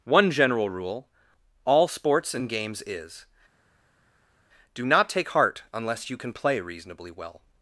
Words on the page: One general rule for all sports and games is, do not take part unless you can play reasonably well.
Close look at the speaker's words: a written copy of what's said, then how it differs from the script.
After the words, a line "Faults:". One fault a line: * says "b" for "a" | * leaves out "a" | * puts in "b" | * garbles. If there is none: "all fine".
One general rule all sports and games is, do not take heart unless you can play reasonably well.
Faults:
* leaves out "for"
* says "heart" for "part"